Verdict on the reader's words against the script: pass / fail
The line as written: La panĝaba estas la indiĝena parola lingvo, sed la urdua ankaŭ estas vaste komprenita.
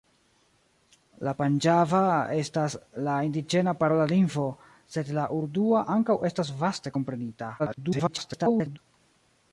fail